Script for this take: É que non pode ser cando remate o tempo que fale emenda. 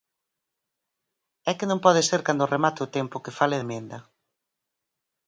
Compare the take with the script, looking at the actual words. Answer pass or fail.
pass